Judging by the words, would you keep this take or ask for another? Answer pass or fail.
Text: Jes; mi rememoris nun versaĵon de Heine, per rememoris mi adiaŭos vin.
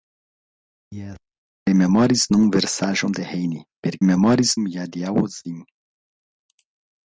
pass